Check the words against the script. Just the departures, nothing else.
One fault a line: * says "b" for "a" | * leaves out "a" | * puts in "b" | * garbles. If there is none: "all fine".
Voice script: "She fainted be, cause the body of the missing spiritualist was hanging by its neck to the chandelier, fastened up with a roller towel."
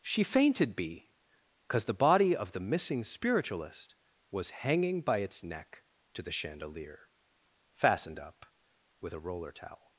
all fine